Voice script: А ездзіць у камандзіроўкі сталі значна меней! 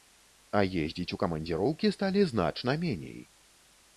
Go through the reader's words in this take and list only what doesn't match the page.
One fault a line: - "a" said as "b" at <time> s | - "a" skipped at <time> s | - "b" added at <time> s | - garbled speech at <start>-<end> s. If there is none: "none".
none